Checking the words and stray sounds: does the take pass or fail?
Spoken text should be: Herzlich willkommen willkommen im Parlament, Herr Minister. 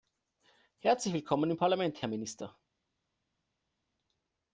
fail